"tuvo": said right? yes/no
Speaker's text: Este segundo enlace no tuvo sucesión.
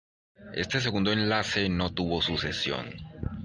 yes